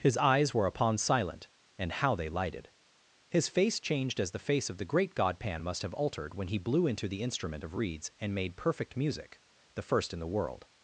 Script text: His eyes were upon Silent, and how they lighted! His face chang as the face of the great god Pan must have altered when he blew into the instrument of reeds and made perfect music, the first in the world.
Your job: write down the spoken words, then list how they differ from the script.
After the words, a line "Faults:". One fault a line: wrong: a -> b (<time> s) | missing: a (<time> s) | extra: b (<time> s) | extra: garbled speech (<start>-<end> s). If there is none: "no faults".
His eyes were upon Silent, and how they lighted! His face changed as the face of the great god Pan must have altered when he blew into the instrument of reeds and made perfect music, the first in the world.
Faults:
wrong: chang -> changed (3.8 s)